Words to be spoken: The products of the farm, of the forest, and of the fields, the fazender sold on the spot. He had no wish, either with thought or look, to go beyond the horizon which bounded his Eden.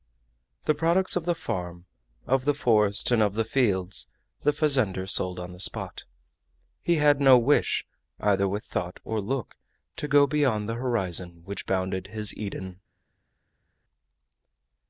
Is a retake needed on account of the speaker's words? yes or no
no